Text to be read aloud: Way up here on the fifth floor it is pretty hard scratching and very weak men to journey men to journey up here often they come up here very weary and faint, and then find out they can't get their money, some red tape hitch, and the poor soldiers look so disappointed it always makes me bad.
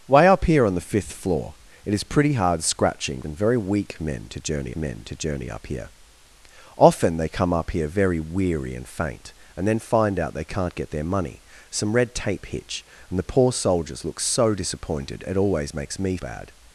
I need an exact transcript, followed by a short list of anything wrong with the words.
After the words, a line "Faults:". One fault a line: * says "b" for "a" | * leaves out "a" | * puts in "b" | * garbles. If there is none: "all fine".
Way up here on the fifth floor it is pretty hard scratching and very weak men to journey men to journey up here often they come up here very weary and faint, and then find out they can't get their money, some red tape hitch, and the poor soldiers look so disappointed it always makes me bad.
Faults:
all fine